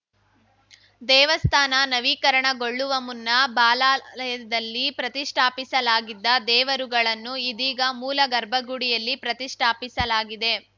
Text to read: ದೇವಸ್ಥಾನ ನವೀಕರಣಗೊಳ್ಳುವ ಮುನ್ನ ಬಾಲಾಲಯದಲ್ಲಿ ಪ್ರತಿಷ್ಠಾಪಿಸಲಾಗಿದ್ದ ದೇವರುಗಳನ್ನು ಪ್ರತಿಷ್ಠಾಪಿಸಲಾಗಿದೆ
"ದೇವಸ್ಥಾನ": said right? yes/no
yes